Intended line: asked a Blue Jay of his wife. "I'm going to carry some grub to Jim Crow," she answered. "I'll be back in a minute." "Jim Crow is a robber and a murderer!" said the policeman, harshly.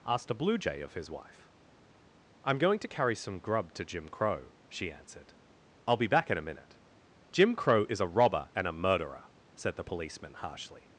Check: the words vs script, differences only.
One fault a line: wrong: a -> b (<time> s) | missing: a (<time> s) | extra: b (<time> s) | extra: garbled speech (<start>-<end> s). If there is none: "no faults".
no faults